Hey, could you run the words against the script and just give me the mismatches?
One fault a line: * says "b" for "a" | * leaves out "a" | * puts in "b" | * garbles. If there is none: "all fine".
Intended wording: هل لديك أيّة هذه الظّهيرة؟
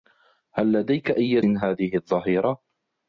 all fine